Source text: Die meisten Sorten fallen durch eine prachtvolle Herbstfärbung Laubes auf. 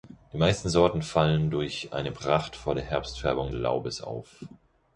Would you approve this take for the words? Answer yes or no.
yes